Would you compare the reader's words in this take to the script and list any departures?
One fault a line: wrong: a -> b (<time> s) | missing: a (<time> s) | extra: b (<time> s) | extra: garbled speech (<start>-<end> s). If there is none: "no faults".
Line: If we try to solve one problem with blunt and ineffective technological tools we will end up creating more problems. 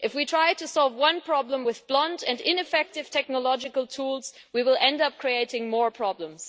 no faults